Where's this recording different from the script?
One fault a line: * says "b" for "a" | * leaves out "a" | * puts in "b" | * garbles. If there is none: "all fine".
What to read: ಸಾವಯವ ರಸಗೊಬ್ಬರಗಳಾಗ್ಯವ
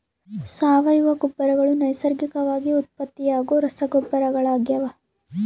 * puts in "ಗೊಬ್ಬರಗಳು ನೈಸರ್ಗಿಕವಾಗಿ ಉತ್ಪತ್ತಿಯಾಗೋ"